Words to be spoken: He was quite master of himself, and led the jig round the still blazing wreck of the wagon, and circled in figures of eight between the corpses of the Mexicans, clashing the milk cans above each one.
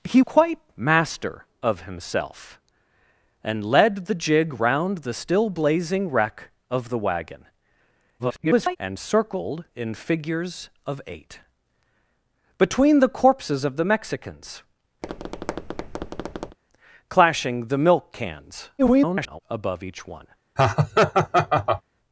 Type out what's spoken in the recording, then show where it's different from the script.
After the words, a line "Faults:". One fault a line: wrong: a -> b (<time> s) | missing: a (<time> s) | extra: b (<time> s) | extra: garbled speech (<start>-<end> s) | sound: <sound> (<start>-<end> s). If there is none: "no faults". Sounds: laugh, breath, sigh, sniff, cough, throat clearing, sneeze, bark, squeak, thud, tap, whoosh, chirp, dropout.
He quite master of himself, and led the jig round the still blazing wreck of the wagon, [garbled] and circled in figures of eight between the corpses of the Mexicans, clashing the milk cans [garbled] above each one.
Faults:
missing: was (0.2 s)
extra: garbled speech (8.2-8.8 s)
sound: tap (15.0-16.6 s)
extra: garbled speech (18.8-19.4 s)
sound: laugh (20.6-21.8 s)